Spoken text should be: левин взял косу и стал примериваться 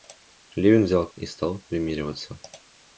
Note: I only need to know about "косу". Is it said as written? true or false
false